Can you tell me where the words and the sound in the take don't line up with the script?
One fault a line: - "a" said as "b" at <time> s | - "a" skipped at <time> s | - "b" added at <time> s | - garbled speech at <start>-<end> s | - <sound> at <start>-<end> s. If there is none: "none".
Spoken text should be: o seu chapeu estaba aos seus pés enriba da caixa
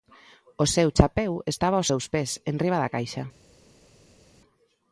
none